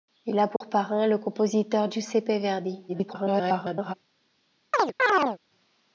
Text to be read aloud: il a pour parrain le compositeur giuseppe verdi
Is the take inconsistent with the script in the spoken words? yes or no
yes